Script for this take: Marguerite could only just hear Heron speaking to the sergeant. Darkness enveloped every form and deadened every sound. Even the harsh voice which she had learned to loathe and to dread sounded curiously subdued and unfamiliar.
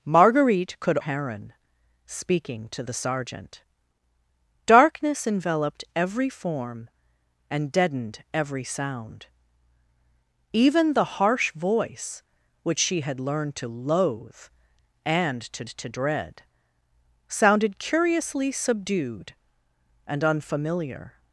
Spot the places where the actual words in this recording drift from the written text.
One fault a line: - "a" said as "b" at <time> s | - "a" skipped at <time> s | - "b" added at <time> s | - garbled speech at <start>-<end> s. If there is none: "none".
- "only just hear" skipped at 1.0 s
- "to" added at 15.7 s